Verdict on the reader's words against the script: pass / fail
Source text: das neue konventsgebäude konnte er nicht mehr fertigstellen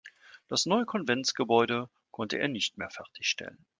pass